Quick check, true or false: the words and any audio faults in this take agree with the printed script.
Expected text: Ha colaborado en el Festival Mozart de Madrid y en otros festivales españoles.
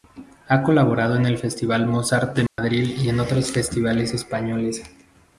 false